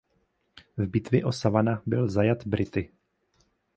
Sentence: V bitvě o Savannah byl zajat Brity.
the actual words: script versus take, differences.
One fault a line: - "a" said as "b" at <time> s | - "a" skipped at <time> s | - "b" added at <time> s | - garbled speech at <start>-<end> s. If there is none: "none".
none